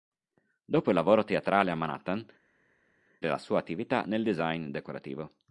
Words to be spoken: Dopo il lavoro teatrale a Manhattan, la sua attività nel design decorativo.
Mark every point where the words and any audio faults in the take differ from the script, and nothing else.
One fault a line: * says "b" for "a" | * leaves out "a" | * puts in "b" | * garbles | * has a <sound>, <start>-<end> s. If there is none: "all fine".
all fine